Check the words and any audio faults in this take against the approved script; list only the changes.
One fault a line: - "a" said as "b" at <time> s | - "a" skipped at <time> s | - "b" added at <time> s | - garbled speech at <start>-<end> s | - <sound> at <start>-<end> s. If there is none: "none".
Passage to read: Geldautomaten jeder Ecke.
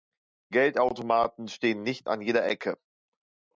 - "stehen nicht an" added at 1.5 s